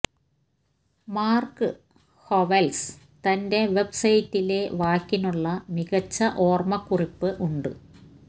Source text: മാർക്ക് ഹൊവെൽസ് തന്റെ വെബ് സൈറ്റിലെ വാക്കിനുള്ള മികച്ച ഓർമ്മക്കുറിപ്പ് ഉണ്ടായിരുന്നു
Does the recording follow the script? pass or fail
fail